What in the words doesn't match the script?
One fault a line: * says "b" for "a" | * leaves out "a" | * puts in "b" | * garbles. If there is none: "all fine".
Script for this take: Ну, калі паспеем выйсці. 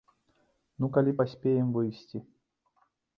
all fine